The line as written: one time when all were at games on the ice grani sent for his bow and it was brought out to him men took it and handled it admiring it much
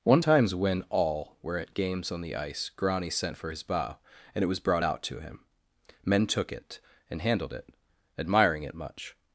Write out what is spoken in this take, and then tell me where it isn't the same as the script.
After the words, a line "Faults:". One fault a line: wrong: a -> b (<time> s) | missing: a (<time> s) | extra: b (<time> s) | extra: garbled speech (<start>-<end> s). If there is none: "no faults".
one times when all were at games on the ice grani sent for his bow and it was brought out to him men took it and handled it admiring it much
Faults:
wrong: time -> times (0.2 s)